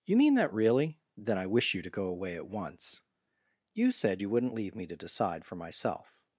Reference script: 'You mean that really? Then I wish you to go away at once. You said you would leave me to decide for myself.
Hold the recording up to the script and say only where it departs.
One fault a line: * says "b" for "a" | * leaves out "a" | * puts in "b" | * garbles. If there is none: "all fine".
* says "wouldn't" for "would"